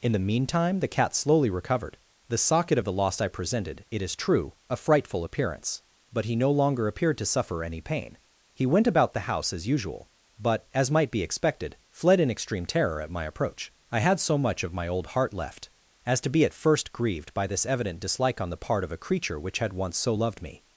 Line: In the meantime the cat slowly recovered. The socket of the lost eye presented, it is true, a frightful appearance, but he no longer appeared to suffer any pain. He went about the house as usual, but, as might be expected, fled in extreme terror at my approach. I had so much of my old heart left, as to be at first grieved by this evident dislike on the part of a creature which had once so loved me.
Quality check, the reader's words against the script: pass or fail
pass